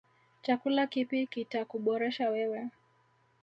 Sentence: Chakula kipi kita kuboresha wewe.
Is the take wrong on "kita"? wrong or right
right